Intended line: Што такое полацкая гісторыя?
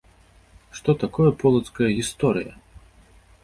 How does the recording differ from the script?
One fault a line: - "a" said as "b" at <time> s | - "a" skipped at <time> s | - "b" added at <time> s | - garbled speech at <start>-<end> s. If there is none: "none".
none